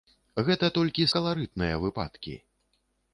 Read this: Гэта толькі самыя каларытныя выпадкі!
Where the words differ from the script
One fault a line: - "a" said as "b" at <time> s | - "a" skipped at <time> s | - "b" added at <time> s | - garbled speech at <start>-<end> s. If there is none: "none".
- "самыя" skipped at 1.1 s